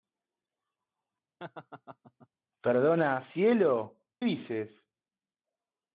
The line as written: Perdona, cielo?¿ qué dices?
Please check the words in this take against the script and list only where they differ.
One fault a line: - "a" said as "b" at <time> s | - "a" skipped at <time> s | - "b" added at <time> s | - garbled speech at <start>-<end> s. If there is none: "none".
- "qué" skipped at 4.0 s